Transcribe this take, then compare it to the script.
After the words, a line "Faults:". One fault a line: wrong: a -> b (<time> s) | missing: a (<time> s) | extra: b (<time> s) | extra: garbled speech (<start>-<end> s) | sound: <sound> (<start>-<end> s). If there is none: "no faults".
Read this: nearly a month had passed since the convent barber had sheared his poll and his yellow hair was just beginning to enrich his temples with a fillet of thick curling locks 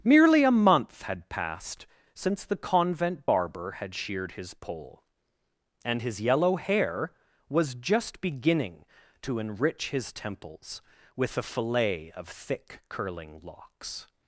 merely a month had passed since the convent barber had sheared his poll and his yellow hair was just beginning to enrich his temples with a fillet of thick curling locks
Faults:
wrong: nearly -> merely (0.0 s)